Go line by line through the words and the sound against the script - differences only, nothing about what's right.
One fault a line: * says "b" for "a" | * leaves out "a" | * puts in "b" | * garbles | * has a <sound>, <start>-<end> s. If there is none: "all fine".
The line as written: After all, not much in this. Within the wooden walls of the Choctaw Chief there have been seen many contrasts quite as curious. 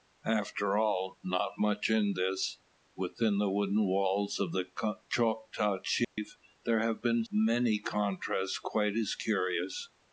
* has a dropout, 6.0-6.2 s
* leaves out "seen"